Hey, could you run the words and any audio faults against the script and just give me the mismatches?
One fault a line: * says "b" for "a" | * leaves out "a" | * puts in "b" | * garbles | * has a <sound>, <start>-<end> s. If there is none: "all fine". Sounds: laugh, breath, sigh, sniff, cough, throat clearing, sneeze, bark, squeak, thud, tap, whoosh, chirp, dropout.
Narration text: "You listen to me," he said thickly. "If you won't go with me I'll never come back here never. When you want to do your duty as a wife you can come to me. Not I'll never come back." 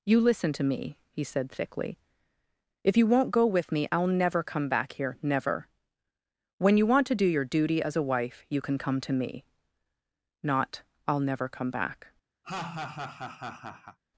* has a laugh, 12.4-14.0 s